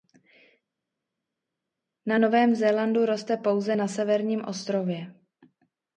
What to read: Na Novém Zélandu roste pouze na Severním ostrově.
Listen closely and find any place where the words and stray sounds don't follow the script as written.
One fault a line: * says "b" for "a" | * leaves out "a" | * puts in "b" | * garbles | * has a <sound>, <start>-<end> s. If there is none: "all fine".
all fine